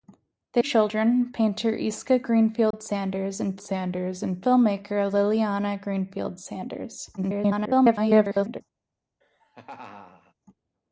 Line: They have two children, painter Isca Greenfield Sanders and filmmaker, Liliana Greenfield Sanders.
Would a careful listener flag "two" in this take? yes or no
yes